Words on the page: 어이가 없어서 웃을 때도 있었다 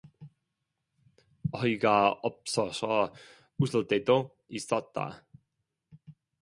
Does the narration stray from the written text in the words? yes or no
no